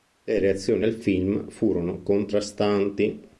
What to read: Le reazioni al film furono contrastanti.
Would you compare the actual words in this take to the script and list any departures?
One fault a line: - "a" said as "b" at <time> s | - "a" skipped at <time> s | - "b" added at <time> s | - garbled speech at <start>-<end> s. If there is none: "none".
none